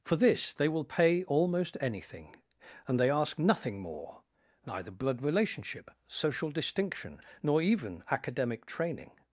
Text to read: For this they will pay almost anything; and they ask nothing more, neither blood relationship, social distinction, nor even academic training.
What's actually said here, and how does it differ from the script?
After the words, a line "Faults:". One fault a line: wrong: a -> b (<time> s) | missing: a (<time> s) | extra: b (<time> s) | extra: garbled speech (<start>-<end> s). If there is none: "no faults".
For this they will pay almost anything; and they ask nothing more, neither blood relationship, social distinction, nor even academic training.
Faults:
no faults